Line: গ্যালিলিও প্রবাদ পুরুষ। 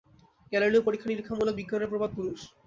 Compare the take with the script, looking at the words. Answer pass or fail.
fail